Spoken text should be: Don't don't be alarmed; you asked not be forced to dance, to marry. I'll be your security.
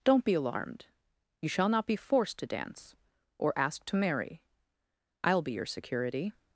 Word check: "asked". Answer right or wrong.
wrong